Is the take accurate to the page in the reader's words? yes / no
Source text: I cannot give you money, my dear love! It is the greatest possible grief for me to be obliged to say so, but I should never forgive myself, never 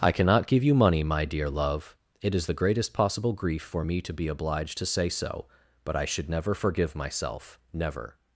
yes